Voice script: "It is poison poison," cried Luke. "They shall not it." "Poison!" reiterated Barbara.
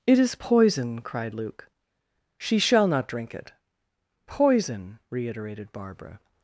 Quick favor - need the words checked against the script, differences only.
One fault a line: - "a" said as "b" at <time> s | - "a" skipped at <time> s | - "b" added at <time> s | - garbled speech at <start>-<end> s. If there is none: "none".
- "poison" skipped at 1.0 s
- "They" said as "She" at 2.4 s
- "drink" added at 3.1 s